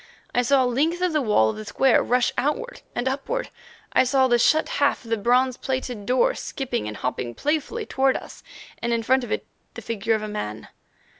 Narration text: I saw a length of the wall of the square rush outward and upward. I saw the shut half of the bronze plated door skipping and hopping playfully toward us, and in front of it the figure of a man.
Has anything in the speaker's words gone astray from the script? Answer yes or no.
no